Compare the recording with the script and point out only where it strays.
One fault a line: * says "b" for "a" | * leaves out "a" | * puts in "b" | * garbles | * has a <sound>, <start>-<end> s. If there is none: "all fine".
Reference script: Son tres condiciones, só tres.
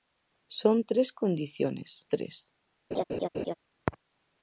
* leaves out "só"
* has a laugh, 2.9-3.5 s